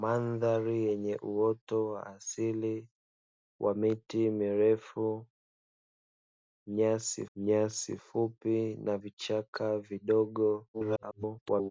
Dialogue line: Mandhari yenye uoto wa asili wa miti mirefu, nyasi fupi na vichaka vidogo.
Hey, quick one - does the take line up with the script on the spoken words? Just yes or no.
no